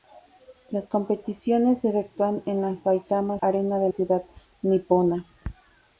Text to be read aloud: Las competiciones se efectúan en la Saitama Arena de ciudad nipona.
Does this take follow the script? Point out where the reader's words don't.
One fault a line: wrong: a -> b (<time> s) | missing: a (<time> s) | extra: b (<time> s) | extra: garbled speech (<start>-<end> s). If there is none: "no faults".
no faults